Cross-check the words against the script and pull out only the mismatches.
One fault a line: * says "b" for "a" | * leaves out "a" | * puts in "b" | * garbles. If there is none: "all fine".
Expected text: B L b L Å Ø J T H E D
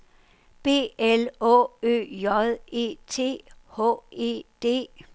* leaves out "b L"
* puts in "E"